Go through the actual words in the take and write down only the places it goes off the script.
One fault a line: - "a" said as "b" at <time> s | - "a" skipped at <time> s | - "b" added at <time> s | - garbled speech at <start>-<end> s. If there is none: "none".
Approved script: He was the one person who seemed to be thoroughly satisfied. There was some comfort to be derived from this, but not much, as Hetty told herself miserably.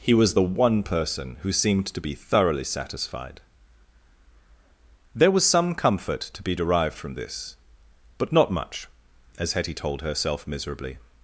none